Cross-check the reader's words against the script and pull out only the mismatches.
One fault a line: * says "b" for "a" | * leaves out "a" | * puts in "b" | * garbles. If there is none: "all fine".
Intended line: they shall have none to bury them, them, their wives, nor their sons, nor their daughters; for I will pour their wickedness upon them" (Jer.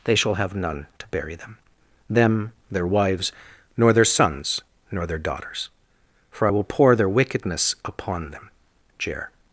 all fine